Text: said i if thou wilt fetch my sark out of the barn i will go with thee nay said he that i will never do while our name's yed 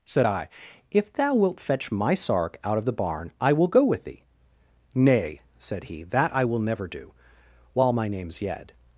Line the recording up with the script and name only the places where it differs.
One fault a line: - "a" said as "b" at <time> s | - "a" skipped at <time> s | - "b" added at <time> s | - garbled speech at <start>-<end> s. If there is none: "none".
- "our" said as "my" at 7.9 s